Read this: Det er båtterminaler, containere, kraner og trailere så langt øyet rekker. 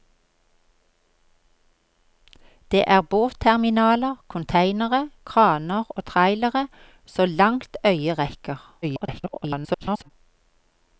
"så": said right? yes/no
yes